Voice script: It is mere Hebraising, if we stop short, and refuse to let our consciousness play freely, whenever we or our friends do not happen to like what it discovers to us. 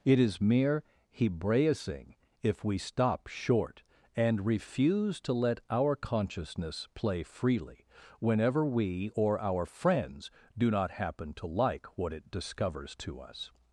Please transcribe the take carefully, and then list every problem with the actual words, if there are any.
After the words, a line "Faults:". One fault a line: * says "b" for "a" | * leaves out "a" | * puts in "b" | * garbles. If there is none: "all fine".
It is mere Hebraising, if we stop short, and refuse to let our consciousness play freely, whenever we or our friends do not happen to like what it discovers to us.
Faults:
all fine